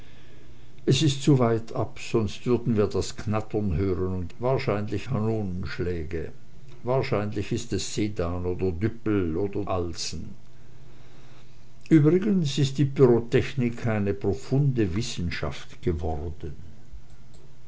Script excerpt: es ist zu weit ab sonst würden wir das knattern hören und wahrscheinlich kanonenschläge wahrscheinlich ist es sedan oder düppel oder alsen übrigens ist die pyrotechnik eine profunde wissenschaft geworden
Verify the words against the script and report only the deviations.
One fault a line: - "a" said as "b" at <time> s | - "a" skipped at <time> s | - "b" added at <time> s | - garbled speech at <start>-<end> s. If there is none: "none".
none